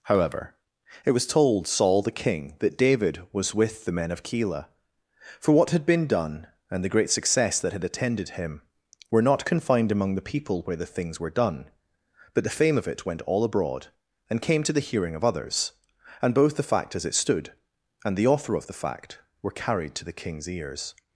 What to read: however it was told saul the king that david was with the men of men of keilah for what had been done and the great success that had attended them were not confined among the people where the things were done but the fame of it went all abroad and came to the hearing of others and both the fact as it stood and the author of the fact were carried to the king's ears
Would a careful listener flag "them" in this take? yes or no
yes